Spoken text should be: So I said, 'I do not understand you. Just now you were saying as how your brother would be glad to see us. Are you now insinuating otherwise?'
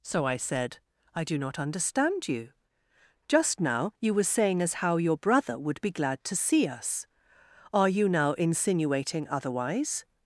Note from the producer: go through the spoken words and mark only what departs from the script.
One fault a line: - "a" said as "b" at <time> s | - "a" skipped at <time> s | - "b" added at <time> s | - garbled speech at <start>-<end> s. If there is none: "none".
none